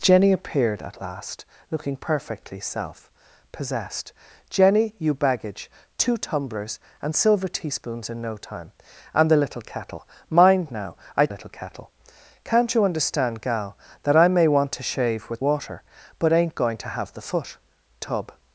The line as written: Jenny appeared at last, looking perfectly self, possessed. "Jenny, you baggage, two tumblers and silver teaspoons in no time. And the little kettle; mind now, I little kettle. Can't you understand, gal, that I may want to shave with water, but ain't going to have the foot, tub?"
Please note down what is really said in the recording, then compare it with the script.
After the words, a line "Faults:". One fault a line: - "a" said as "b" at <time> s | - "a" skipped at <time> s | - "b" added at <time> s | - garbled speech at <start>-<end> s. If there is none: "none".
Jenny appeared at last, looking perfectly self, possessed. "Jenny, you baggage, two tumblers and silver teaspoons in no time. And the little kettle; mind now, I little kettle. Can't you understand, gal, that I may want to shave with water, but ain't going to have the foot, tub?"
Faults:
none